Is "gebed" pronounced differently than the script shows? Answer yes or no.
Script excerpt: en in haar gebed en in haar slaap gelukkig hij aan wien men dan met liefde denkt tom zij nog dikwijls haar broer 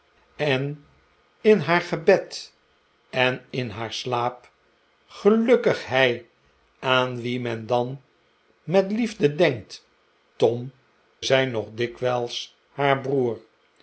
no